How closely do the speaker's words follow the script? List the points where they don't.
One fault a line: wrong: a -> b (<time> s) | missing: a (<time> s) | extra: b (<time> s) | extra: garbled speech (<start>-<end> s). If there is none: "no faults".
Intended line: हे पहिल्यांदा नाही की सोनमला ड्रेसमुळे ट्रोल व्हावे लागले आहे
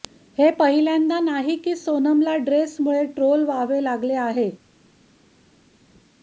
no faults